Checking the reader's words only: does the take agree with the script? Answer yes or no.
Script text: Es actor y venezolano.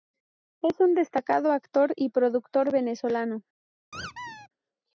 no